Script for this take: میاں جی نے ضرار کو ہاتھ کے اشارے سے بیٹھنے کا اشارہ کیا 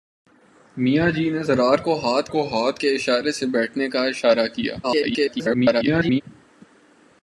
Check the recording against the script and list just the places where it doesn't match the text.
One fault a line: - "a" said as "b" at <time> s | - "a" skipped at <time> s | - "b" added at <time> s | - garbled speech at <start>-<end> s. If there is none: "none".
- "کو ہاتھ" added at 2.3 s
- garbled speech at 4.8-6.2 s